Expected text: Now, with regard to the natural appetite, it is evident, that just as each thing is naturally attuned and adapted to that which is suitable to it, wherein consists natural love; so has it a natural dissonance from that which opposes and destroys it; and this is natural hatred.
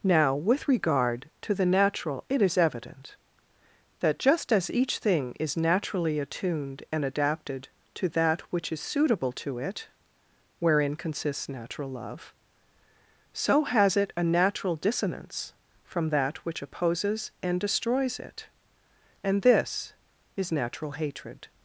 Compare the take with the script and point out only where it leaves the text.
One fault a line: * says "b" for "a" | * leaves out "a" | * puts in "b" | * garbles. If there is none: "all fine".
* leaves out "appetite"